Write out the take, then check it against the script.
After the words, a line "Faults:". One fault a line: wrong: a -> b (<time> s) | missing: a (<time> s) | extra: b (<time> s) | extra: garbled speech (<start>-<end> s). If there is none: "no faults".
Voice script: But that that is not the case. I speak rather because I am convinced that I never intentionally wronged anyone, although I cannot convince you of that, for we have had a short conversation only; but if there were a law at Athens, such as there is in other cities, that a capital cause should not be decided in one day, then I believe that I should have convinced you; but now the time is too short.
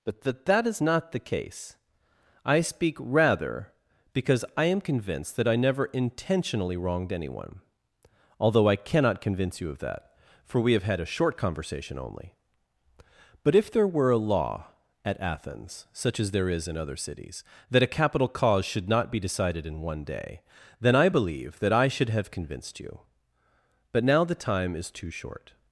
But that that is not the case. I speak rather because I am convinced that I never intentionally wronged anyone, although I cannot convince you of that, for we have had a short conversation only; but if there were a law at Athens, such as there is in other cities, that a capital cause should not be decided in one day, then I believe that I should have convinced you; but now the time is too short.
Faults:
no faults